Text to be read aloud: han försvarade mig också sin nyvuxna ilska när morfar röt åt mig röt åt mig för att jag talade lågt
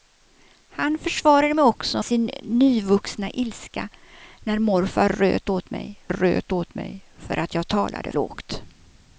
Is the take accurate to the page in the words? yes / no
yes